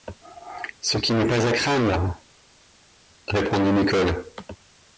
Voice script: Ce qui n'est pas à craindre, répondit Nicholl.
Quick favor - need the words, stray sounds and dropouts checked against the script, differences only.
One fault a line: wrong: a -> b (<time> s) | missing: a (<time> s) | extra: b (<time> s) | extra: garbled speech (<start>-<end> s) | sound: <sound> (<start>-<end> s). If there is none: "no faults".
no faults